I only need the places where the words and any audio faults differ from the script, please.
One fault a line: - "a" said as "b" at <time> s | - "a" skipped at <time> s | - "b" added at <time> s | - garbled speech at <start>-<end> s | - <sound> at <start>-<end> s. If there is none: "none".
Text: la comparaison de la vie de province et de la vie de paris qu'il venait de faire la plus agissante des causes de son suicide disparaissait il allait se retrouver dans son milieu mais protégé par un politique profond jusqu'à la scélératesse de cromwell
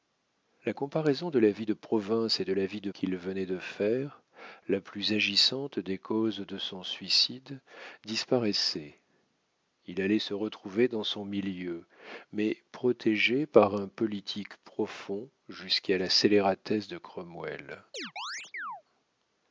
- "paris" skipped at 2.9 s
- chirp at 17.9-18.8 s